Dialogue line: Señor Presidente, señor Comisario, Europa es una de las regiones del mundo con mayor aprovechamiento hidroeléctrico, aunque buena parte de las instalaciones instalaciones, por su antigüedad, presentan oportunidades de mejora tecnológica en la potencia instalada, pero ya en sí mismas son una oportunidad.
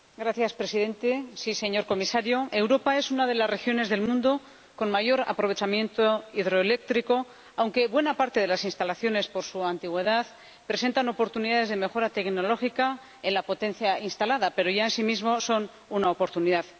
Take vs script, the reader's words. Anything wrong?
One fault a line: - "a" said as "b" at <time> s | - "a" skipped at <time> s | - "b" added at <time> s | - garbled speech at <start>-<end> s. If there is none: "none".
- "instalaciones" skipped at 9.3 s